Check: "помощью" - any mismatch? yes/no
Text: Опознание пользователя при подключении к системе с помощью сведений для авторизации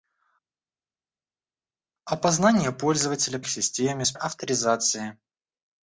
yes